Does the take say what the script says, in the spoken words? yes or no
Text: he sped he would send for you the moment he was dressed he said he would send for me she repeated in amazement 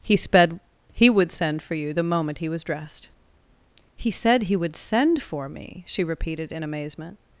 yes